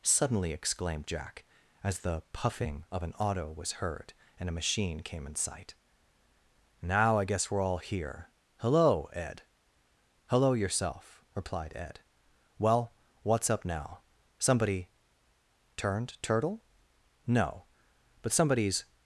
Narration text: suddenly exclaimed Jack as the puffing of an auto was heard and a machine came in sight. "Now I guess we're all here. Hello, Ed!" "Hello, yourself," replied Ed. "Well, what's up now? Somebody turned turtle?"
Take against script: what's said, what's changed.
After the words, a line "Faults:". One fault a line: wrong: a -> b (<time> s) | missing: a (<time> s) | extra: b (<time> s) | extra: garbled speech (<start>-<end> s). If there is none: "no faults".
suddenly exclaimed Jack as the puffing of an auto was heard and a machine came in sight. "Now I guess we're all here. Hello, Ed!" "Hello, yourself," replied Ed. "Well, what's up now? Somebody turned turtle?" "No, but somebody's
Faults:
extra: No but somebody's (17.3 s)